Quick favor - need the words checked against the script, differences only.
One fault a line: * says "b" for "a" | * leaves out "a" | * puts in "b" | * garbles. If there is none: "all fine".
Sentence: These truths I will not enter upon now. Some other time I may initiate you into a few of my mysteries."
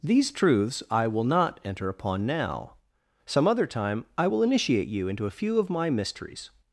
* says "will" for "may"